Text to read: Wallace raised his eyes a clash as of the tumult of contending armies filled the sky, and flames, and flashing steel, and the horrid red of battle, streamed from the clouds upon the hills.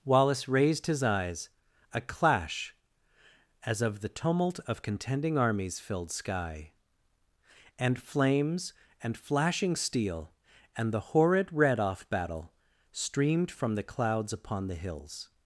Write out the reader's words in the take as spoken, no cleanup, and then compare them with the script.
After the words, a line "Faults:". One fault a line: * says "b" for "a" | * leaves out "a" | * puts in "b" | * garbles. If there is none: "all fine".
Wallace raised his eyes a clash as of the tumult of contending armies filled sky, and flames, and flashing steel, and the horrid red off battle, streamed from the clouds upon the hills.
Faults:
* leaves out "the"
* says "off" for "of"